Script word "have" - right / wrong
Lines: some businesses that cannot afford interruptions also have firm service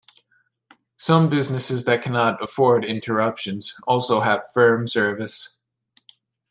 right